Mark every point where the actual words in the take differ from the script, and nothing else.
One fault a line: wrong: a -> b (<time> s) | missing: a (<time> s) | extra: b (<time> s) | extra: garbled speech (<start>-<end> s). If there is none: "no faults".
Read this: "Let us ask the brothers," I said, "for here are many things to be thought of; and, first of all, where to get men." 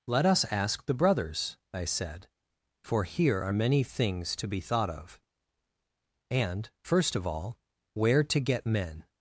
no faults